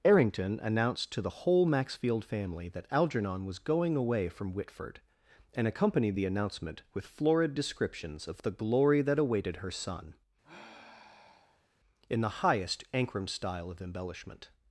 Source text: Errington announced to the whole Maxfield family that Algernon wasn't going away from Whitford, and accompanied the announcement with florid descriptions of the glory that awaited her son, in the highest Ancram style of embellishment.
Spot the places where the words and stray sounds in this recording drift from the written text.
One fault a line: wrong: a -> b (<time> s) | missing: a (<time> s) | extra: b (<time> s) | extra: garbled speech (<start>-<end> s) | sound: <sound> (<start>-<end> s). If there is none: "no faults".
wrong: wasn't -> was (3.5 s)
sound: sigh (10.4-11.7 s)